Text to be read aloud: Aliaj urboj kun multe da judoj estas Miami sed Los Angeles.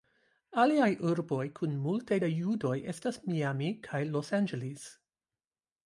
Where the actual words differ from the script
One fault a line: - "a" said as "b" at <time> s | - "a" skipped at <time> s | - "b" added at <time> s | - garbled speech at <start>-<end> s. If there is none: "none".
- "sed" said as "kaj" at 3.9 s